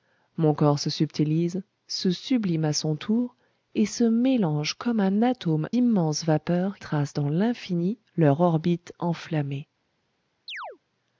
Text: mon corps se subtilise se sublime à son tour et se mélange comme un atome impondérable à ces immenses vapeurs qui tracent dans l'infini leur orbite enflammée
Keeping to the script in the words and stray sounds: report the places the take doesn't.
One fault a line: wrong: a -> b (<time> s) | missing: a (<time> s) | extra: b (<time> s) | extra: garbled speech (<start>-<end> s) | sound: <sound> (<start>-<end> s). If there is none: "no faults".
missing: impondérable à ces (5.7 s)
missing: qui (6.8 s)
sound: chirp (10.5-10.8 s)